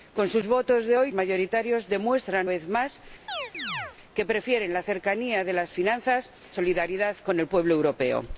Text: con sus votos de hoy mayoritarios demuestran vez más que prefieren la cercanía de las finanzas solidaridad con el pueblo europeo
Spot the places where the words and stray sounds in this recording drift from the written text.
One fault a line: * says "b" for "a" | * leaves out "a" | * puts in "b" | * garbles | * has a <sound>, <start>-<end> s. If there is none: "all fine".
* has a chirp, 3.3-4.0 s